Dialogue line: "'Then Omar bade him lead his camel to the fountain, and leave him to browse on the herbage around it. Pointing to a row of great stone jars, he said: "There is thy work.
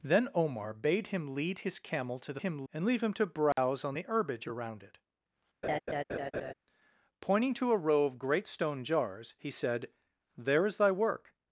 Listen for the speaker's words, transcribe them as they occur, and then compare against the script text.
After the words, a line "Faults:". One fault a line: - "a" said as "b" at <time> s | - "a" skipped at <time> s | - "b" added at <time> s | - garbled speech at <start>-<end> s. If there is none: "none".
"'Then Omar bade him lead his camel to the him, and leave him to browse on the herbage around it. Pointing to a row of great stone jars, he said: "There is thy work.
Faults:
- "fountain" said as "him" at 2.4 s